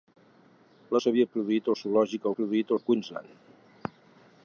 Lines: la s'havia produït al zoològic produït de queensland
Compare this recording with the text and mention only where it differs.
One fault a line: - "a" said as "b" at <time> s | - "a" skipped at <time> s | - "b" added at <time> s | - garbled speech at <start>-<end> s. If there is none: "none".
none